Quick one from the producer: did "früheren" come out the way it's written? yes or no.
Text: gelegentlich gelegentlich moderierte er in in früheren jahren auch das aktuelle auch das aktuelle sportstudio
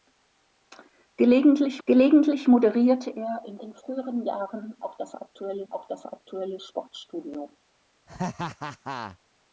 yes